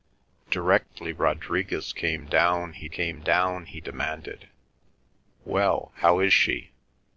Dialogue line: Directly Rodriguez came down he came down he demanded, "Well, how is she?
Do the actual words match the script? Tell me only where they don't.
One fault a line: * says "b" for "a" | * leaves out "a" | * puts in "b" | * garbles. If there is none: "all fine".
all fine